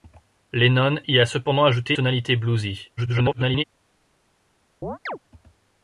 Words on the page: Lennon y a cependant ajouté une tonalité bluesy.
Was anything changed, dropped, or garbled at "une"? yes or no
yes